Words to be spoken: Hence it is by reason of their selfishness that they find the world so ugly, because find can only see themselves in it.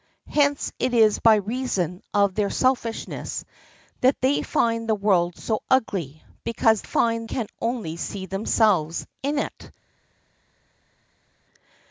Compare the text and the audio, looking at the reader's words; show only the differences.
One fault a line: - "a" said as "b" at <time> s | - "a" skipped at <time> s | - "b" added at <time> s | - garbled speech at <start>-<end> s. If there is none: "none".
none